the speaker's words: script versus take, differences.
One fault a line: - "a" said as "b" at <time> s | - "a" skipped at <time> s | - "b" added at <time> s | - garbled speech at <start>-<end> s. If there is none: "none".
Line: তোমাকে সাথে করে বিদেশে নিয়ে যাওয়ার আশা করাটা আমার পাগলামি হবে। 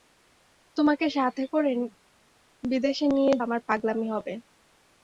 - "যাওয়ার আশা করাটা" skipped at 3.4 s